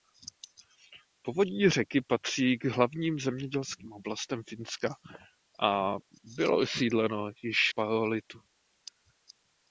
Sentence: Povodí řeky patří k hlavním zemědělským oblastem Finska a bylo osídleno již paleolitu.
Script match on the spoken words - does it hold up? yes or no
yes